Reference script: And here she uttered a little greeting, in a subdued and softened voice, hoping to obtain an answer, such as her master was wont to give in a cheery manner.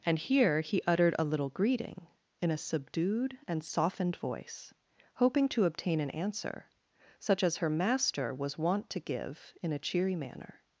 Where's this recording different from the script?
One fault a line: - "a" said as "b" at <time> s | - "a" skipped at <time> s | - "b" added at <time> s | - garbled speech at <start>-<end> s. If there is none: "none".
- "she" said as "he" at 0.6 s